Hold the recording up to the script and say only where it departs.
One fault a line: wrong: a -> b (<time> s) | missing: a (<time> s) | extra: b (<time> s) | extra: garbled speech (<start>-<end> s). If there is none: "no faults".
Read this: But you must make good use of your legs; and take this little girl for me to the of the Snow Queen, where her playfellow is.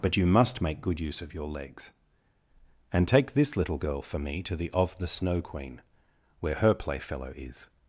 no faults